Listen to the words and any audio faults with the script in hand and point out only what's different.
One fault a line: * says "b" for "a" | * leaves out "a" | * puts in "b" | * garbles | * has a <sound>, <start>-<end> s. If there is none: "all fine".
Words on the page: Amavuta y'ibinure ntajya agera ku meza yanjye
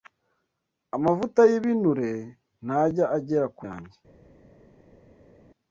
* leaves out "meza"